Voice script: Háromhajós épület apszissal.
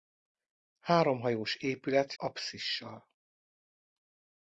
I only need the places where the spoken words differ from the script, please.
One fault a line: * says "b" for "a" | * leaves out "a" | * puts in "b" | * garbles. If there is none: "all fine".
all fine